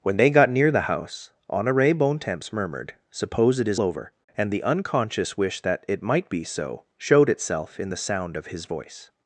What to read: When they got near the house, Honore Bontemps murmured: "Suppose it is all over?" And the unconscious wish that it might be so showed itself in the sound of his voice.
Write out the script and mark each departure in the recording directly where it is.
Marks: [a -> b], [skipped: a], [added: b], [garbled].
When they got near the house, Honore Bontemps murmured: "Suppose it is [skipped: all] over?" And the unconscious wish that it might be so showed itself in the sound of his voice.